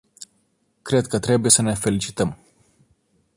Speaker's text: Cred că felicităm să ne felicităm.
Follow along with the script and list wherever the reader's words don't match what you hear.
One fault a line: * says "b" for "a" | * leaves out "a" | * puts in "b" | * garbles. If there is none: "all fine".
* says "trebuie" for "felicităm"